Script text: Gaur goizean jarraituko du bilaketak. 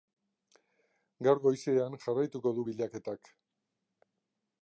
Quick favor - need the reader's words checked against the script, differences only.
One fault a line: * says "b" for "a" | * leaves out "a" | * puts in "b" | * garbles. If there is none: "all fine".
all fine